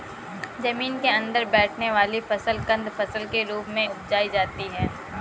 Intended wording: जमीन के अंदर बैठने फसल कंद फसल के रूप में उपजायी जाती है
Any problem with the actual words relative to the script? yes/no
yes